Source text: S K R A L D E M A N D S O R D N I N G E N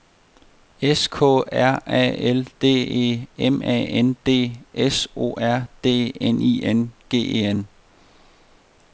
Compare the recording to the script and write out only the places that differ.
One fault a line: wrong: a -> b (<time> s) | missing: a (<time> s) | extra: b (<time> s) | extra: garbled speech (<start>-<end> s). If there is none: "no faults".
no faults